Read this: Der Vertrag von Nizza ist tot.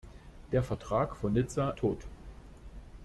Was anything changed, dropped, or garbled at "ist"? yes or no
yes